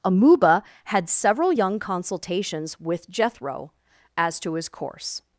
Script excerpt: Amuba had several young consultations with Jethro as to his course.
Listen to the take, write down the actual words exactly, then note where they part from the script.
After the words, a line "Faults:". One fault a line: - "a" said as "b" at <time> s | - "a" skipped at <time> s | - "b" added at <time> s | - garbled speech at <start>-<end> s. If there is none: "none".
Amuba had several young consultations with Jethro as to his course.
Faults:
none